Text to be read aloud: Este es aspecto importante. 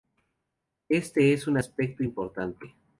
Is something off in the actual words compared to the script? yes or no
yes